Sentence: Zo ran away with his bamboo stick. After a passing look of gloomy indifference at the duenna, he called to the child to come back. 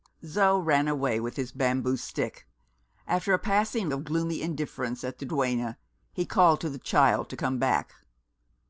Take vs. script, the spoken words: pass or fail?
fail